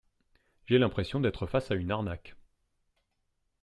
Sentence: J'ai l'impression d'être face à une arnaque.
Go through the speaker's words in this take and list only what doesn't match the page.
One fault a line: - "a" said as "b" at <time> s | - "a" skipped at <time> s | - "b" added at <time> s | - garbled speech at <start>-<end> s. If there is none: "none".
none